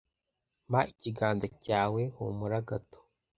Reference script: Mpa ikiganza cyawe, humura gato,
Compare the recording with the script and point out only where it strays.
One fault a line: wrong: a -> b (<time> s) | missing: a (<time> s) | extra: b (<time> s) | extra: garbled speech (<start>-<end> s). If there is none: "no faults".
no faults